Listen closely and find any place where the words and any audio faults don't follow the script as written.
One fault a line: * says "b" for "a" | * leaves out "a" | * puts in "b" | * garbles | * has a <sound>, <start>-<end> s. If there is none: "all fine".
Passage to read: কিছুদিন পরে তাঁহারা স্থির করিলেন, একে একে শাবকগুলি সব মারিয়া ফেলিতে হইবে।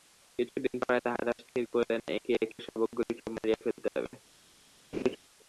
* has a laugh, 4.9-5.2 s